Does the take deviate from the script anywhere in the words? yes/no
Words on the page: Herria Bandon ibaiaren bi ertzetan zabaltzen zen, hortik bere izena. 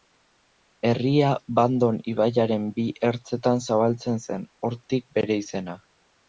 no